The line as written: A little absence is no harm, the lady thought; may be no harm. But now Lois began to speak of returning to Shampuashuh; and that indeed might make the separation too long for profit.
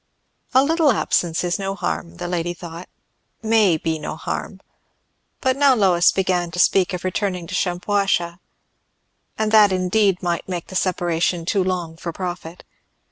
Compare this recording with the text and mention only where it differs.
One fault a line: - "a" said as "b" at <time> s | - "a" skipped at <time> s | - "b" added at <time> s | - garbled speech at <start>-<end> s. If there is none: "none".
none